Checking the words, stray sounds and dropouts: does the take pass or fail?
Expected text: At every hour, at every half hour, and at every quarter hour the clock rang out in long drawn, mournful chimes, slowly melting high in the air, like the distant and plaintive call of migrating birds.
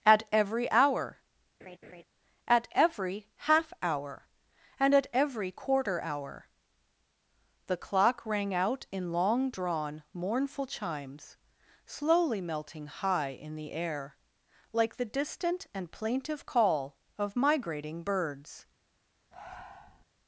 fail